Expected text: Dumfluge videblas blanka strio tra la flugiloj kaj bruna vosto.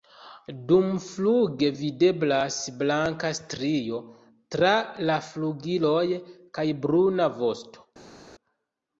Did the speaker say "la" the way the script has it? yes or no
yes